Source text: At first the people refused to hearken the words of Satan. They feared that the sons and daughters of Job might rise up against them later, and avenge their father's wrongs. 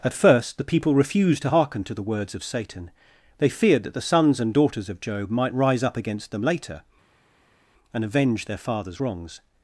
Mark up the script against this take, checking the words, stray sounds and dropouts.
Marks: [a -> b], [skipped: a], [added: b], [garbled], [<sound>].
At first the people refused to hearken [added: to] the words of Satan. They feared that the sons and daughters of Job might rise up against them later, and avenge their father's wrongs.